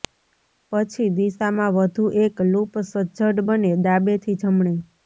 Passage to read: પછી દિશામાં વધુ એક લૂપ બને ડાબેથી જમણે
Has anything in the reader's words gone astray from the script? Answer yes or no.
yes